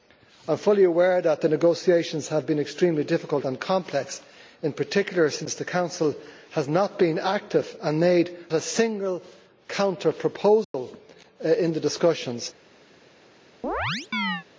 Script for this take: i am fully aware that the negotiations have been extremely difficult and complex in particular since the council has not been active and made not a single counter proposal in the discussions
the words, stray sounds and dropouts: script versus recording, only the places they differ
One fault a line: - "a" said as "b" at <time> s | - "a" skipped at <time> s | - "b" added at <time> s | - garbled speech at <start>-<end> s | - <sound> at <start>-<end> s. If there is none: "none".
- "not" skipped at 8.3 s
- dropout at 10.6-10.7 s
- chirp at 13.6-14.5 s